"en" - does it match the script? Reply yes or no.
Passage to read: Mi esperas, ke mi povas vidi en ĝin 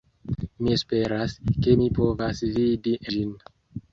no